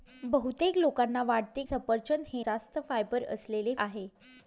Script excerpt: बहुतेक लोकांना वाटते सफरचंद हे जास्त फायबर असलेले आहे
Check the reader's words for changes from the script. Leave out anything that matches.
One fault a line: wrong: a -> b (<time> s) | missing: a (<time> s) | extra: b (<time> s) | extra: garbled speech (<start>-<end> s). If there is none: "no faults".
no faults